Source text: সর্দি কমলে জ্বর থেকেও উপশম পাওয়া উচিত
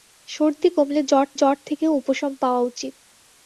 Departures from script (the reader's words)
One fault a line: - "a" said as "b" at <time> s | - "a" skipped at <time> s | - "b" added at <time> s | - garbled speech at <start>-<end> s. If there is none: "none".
- "জ্বর" added at 1.3 s